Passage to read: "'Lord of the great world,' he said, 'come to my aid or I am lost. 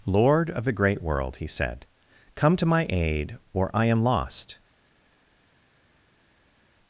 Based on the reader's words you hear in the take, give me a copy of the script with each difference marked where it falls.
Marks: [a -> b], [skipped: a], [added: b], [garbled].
"'Lord of the great world,' he said, 'come to my aid or I am lost.